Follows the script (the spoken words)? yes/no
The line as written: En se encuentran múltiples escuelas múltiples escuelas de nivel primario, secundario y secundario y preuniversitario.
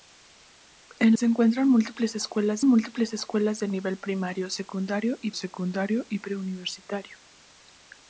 yes